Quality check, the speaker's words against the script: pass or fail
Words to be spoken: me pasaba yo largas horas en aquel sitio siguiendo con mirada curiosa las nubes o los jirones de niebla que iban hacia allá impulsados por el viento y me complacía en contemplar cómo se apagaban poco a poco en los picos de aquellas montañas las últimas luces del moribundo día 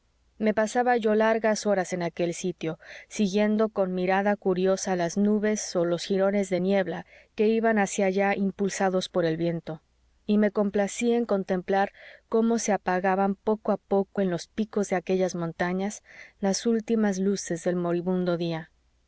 pass